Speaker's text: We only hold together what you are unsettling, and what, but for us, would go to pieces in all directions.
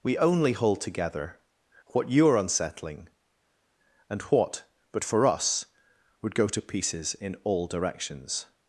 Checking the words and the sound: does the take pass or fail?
pass